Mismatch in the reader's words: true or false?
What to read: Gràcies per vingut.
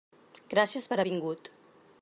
false